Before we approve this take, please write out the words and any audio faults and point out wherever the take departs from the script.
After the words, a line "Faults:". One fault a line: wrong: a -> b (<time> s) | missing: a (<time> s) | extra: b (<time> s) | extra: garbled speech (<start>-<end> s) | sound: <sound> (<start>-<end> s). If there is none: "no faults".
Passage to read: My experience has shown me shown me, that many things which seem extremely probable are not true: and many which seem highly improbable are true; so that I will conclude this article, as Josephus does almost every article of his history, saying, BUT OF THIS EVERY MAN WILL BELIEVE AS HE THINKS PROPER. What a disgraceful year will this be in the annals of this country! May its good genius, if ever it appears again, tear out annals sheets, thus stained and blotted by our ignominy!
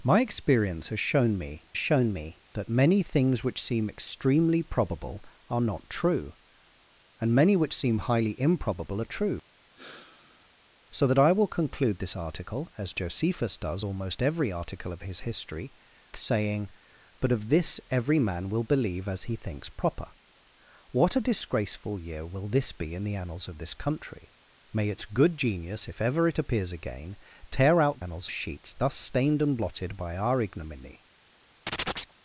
My experience has shown me shown me, that many things which seem extremely probable are not true: and many which seem highly improbable are true; so that I will conclude this article, as Josephus does almost every article of his history, saying, BUT OF THIS EVERY MAN WILL BELIEVE AS HE THINKS PROPER. What a disgraceful year will this be in the annals of this country! May its good genius, if ever it appears again, tear out annals sheets, thus stained and blotted by our ignominy!
Faults:
sound: sigh (9.8-10.5 s)
sound: chirp (31.7-32.1 s)